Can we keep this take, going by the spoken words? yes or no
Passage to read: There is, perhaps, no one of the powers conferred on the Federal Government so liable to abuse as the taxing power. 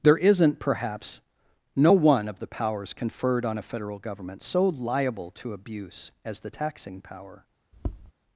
no